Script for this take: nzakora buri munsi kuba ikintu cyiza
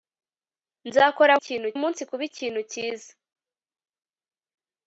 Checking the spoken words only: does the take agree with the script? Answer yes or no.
no